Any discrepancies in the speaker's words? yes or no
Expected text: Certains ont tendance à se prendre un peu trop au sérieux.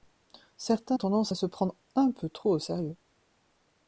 yes